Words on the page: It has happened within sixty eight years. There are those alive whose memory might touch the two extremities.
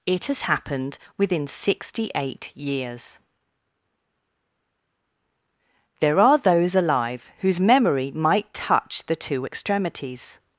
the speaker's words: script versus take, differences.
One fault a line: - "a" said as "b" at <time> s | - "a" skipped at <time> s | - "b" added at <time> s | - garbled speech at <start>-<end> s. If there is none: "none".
none